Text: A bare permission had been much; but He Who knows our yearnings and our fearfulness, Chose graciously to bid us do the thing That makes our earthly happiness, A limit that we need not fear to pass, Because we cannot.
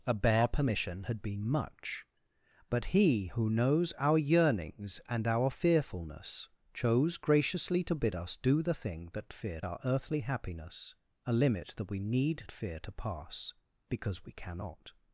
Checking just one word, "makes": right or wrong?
wrong